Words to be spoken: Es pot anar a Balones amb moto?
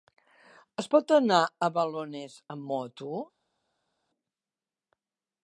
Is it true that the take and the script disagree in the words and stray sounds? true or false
false